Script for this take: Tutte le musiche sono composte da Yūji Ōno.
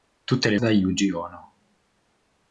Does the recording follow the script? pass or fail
fail